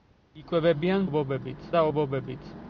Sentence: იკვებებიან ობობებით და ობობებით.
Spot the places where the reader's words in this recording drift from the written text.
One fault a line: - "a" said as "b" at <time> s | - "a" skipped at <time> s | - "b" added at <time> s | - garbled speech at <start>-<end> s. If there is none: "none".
none